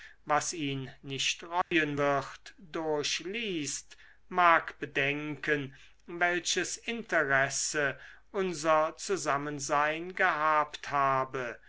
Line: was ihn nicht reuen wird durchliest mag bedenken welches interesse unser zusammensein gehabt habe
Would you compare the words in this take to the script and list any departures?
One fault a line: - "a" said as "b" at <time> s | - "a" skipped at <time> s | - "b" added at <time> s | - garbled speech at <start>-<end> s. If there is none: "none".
none